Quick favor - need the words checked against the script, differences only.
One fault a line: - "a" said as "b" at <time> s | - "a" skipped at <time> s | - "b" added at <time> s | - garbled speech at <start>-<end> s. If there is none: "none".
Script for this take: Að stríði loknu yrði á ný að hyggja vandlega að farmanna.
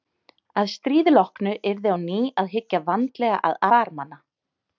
none